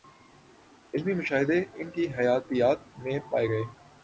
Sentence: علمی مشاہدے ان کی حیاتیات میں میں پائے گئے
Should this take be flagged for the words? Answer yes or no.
yes